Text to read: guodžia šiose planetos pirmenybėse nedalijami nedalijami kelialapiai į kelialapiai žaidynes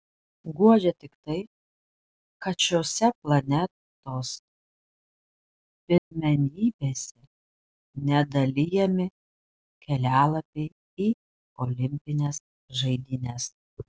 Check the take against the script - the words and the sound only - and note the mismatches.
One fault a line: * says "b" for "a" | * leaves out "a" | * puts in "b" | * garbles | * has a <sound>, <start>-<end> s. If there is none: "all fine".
* puts in "tik tai kad"
* has a dropout, 6.0-6.1 s
* leaves out "nedalijami"
* says "olimpines" for "kelialapiai"